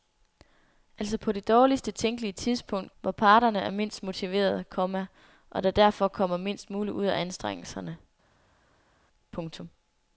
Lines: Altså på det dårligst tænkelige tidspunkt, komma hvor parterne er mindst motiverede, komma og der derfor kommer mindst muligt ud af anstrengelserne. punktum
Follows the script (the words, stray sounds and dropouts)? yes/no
no